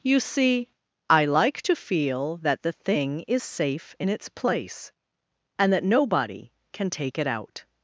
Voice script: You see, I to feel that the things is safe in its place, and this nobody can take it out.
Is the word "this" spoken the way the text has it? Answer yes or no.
no